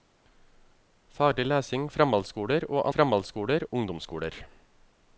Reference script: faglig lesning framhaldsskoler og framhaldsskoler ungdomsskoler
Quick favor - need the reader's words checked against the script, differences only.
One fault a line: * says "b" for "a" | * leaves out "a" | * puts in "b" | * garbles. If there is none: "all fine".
all fine